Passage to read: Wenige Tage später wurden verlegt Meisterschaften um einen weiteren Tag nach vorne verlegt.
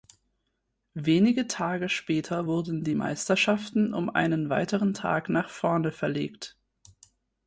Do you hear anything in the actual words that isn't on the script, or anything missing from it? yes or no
yes